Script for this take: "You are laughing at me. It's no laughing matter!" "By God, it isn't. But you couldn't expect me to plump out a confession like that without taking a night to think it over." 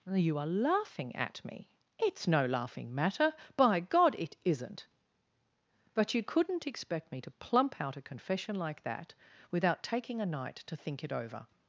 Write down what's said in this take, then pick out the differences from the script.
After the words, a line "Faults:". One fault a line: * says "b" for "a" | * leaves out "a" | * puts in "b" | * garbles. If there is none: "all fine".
"You are laughing at me. It's no laughing matter!" "By God, it isn't. But you couldn't expect me to plump out a confession like that without taking a night to think it over."
Faults:
all fine